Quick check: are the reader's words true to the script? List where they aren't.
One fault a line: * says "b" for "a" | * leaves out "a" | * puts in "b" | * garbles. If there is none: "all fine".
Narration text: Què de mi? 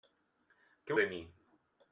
all fine